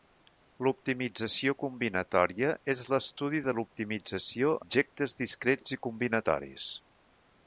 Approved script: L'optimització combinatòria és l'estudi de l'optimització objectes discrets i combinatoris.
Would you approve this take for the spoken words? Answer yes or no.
yes